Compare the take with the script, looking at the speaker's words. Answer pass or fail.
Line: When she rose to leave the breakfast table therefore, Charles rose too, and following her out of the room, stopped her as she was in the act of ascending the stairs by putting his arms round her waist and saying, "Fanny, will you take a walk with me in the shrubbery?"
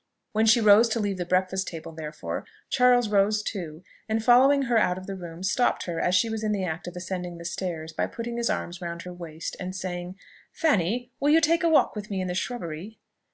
pass